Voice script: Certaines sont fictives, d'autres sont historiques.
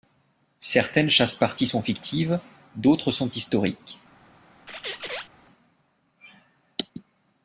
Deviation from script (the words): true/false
true